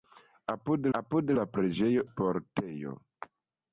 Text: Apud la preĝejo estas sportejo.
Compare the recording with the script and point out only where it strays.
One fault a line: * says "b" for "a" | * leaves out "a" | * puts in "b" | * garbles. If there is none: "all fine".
* puts in "apud"
* leaves out "estas"